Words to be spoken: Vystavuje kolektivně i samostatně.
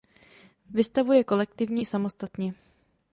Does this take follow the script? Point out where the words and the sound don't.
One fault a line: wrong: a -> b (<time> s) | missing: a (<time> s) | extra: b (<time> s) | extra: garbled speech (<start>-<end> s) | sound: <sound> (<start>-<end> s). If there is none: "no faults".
no faults